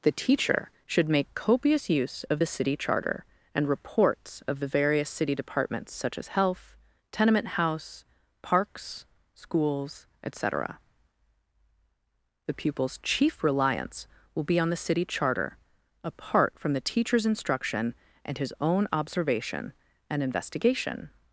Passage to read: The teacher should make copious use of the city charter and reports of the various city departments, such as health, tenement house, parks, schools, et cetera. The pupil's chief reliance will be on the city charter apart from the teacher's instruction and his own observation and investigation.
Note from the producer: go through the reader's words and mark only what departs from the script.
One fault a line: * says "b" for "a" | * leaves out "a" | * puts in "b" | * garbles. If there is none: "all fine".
all fine